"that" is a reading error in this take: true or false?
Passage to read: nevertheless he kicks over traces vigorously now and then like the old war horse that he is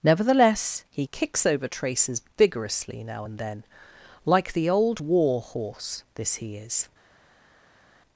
true